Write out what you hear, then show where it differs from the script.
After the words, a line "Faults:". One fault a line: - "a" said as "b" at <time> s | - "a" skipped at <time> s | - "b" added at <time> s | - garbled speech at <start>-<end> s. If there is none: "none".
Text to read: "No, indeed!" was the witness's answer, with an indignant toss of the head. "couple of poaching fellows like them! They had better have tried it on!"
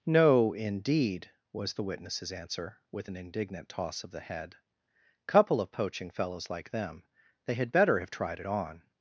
"No, indeed!" was the witness's answer, with an indignant toss of the head. "couple of poaching fellows like them! They had better have tried it on!"
Faults:
none